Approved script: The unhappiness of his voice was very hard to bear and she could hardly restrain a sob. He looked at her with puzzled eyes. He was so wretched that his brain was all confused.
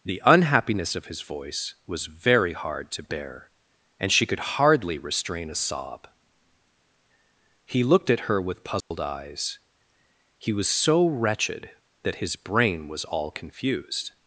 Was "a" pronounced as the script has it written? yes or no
yes